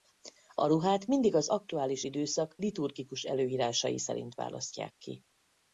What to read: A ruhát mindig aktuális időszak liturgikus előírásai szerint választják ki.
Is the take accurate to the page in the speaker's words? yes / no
no